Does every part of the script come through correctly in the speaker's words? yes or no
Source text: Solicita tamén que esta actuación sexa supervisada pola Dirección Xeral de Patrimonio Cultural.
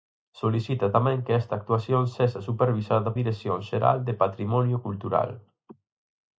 no